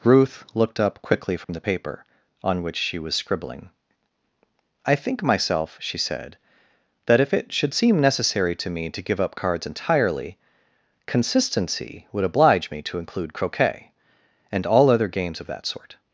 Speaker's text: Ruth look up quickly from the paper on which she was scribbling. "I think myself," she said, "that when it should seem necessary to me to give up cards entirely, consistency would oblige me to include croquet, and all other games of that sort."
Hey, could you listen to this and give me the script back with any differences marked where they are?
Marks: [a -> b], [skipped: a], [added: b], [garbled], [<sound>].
Ruth [look -> looked] up quickly from [dropout] the paper on which she was scribbling. "I think myself," she said, "that [when -> if] it should seem necessary to me to give up cards entirely, consistency would oblige me to include croquet, and all other games of that sort."